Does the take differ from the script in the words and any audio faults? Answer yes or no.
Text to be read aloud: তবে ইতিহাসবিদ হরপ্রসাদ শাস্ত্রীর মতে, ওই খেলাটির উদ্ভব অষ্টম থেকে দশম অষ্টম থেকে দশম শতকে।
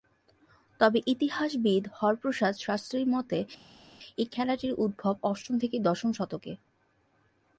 yes